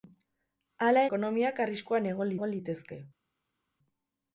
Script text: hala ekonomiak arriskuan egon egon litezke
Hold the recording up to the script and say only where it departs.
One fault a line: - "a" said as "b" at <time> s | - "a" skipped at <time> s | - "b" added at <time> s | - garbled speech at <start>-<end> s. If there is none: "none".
none